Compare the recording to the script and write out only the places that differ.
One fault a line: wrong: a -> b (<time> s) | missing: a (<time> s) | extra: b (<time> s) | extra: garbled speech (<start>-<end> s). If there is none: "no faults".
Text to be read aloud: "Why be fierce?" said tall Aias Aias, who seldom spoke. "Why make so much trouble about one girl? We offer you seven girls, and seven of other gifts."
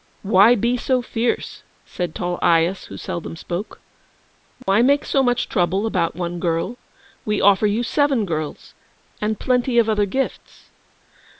extra: so (0.8 s)
missing: Aias (2.9 s)
wrong: seven -> plenty (9.4 s)